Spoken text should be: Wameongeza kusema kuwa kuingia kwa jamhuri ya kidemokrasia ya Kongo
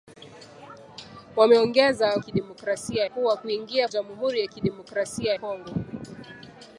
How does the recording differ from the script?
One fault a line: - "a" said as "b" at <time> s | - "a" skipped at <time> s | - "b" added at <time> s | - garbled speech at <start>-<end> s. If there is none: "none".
- "kusema" said as "kidemokrasia" at 2.2 s
- "kwa" skipped at 3.9 s
- "ya" skipped at 5.3 s